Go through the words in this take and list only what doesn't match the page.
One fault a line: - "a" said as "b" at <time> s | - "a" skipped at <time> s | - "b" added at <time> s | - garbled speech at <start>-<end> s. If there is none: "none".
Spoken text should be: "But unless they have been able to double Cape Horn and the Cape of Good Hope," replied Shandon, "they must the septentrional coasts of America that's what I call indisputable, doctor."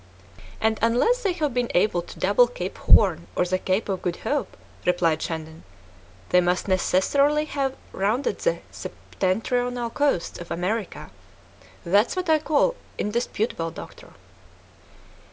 - "But" said as "And" at 0.6 s
- "and" said as "or" at 3.4 s
- "necessarily have rounded" added at 6.7 s